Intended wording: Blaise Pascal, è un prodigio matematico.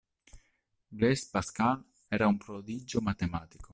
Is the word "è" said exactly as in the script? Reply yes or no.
no